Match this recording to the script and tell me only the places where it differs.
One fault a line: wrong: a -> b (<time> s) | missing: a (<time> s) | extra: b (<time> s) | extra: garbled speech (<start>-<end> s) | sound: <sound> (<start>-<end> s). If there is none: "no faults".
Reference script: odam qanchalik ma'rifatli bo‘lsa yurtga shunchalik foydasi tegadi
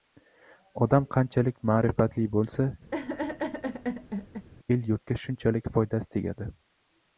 sound: laugh (2.9-4.5 s)
extra: el (4.8 s)